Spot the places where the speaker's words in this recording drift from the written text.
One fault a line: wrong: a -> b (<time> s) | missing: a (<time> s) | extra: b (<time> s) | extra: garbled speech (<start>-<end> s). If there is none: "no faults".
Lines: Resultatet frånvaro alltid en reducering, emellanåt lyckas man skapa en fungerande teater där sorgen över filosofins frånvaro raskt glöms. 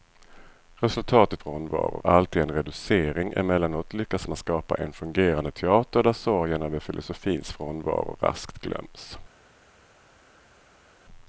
no faults